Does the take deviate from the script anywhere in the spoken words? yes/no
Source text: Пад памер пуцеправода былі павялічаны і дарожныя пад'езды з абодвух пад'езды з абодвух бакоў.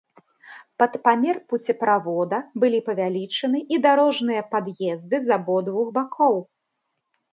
yes